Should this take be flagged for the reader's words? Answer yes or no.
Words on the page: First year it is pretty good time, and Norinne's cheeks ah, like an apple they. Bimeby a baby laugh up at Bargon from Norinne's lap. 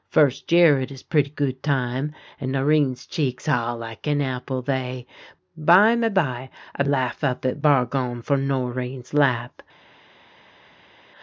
yes